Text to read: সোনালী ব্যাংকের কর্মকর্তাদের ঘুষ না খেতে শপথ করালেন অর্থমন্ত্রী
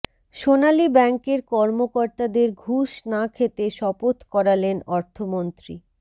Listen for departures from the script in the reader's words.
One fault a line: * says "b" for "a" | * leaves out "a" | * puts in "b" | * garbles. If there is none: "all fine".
all fine